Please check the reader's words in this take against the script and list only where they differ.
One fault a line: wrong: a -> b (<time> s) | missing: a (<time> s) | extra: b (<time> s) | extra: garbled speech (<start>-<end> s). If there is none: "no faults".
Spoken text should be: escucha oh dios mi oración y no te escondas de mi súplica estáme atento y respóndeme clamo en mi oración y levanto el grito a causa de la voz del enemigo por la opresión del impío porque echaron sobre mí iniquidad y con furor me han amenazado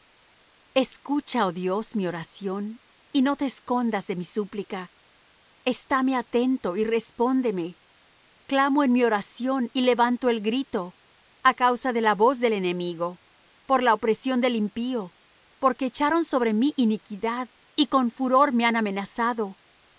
no faults